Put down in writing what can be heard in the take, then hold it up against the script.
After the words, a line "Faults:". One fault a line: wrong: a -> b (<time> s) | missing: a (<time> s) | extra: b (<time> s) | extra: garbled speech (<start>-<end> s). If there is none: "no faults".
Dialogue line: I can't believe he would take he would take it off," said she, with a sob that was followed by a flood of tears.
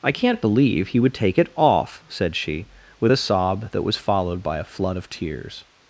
I can't believe he would take it off," said she, with a sob that was followed by a flood of tears.
Faults:
missing: he would take (1.4 s)